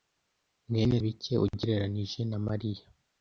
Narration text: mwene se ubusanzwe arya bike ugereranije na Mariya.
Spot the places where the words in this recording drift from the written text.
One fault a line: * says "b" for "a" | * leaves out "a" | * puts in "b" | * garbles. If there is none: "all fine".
* leaves out "se ubusanzwe arya"